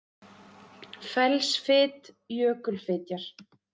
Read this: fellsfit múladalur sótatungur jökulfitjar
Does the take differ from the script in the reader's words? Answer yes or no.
yes